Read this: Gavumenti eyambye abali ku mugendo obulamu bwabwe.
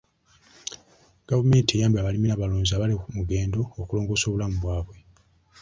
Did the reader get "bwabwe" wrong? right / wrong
right